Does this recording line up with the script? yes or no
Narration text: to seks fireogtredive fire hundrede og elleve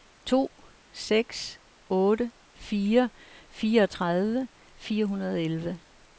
no